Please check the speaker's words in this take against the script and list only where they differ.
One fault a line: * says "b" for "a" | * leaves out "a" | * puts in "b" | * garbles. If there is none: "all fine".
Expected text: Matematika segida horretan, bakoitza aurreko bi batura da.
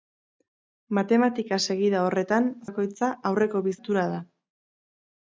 all fine